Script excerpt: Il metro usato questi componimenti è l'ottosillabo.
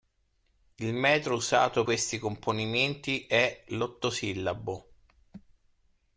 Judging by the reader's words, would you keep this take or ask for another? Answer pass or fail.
pass